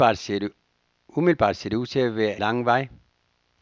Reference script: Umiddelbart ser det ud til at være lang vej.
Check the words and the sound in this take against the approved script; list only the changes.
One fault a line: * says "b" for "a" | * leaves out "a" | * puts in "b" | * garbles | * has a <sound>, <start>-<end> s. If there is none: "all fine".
all fine